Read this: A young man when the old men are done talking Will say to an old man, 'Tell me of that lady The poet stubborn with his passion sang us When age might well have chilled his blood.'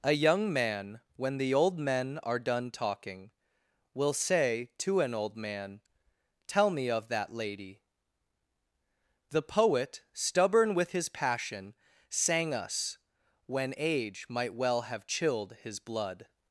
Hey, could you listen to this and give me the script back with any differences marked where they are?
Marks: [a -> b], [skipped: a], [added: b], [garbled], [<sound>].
A young man when the old men are done talking Will say to an old man, 'Tell me of that lady The poet stubborn with his passion sang us When age might well have chilled his blood.'